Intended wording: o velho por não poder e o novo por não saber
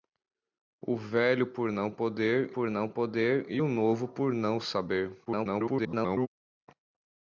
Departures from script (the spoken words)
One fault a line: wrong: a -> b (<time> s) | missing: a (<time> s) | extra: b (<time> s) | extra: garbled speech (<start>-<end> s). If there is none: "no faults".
extra: por não poder (2.5 s)
extra: garbled speech (5.3-6.3 s)